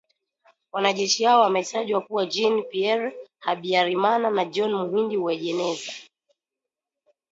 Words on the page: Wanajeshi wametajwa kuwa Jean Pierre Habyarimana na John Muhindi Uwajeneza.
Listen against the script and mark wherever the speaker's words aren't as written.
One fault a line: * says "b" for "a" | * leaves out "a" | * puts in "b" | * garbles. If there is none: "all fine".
* puts in "hao"